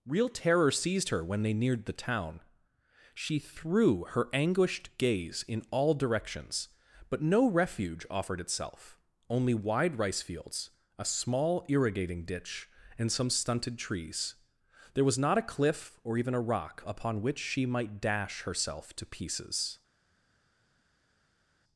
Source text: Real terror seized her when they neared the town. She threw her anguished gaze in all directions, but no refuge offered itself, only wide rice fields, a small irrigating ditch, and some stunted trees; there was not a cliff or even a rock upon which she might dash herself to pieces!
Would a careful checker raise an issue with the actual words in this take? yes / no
no